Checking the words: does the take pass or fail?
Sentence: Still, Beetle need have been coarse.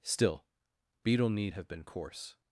pass